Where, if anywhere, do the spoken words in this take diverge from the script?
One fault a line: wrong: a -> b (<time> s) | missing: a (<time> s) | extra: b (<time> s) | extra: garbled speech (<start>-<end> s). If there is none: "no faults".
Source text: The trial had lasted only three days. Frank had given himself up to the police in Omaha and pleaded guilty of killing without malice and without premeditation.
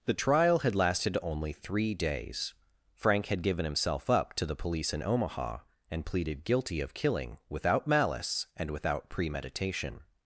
no faults